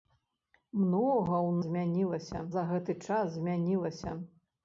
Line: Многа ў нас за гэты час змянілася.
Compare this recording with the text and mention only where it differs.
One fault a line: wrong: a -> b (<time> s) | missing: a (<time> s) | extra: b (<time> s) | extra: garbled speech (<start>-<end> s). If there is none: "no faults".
wrong: нас -> змянілася (1.7 s)